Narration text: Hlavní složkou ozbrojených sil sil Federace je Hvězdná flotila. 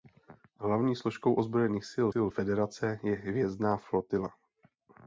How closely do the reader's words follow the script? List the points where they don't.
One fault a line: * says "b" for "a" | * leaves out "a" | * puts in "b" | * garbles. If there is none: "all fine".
all fine